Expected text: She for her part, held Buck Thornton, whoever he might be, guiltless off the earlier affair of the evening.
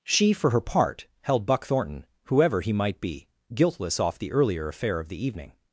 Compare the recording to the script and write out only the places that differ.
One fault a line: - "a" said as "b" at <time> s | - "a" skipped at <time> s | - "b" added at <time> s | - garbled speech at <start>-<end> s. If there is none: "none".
none